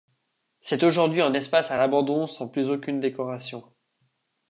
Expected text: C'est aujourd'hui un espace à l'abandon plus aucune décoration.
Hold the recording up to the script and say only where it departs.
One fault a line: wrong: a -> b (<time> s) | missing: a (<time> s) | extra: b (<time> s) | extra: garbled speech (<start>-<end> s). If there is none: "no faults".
extra: sans (2.3 s)